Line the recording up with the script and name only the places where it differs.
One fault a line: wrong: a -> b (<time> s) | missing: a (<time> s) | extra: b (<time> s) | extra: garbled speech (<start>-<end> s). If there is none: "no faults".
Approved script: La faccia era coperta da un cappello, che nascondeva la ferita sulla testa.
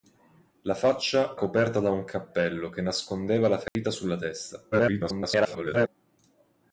missing: era (1.4 s)
extra: garbled speech (4.7-5.9 s)